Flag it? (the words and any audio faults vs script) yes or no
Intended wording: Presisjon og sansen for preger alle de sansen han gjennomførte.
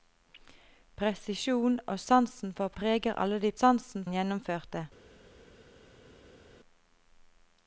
no